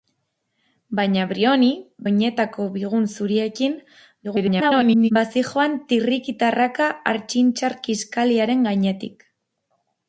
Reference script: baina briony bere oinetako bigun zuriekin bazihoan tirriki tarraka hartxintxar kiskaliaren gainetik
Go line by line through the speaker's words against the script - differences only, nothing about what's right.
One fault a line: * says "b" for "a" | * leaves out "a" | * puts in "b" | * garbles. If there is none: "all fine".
* leaves out "bere"
* garbles